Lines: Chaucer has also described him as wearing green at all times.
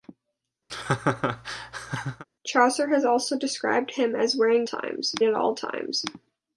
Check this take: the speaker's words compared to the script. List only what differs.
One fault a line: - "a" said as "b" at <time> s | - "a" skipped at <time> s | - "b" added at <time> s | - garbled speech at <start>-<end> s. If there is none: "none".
- "green" said as "times" at 4.6 s